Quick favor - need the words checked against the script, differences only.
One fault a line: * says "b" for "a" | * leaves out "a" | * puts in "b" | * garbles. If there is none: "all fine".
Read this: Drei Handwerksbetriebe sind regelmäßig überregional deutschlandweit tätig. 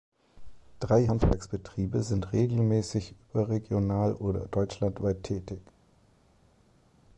* puts in "oder"